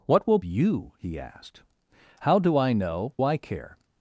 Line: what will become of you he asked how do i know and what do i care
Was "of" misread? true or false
true